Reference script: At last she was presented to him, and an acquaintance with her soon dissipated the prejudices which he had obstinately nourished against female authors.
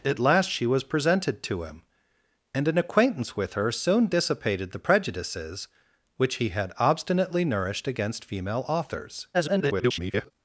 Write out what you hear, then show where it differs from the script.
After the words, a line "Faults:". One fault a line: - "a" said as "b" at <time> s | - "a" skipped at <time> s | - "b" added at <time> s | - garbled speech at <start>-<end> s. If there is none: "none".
At last she was presented to him, and an acquaintance with her soon dissipated the prejudices which he had obstinately nourished against female authors. [garbled]
Faults:
- garbled speech at 9.3-10.3 s